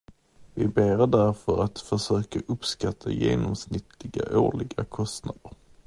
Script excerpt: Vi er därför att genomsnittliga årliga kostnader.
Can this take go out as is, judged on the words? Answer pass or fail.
fail